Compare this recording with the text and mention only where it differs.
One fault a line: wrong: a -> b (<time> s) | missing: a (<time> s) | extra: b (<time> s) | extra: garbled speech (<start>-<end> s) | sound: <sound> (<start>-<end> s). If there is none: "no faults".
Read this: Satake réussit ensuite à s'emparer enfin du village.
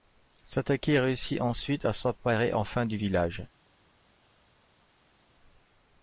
no faults